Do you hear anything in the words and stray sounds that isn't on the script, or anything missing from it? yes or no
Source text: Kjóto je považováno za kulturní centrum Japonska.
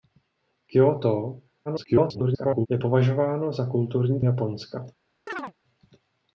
yes